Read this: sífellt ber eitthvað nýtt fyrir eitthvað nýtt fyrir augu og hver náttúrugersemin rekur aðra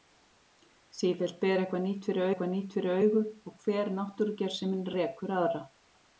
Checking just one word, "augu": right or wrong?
right